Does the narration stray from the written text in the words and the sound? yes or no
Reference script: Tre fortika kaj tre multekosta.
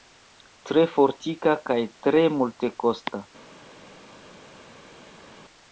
no